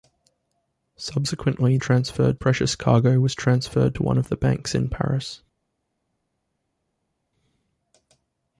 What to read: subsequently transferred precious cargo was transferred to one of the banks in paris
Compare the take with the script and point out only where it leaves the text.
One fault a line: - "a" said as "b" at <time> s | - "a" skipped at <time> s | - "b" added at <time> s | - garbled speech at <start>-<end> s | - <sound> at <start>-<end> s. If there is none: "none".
none